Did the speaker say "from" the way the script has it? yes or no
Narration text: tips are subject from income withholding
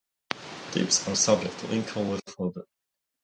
no